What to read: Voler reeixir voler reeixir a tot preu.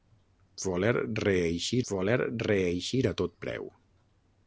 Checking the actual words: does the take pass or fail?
pass